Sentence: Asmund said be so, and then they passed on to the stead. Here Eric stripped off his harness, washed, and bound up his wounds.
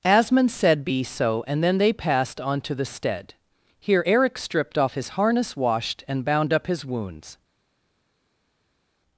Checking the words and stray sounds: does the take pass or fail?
pass